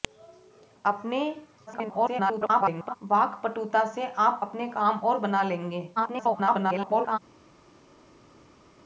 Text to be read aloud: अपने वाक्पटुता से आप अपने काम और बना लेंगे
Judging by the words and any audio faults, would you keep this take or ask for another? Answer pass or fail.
fail